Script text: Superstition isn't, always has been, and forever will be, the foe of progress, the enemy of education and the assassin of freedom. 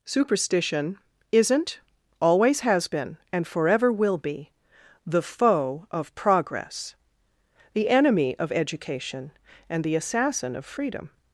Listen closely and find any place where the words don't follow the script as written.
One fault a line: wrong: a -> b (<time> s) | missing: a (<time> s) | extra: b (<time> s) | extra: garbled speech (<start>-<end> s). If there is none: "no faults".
no faults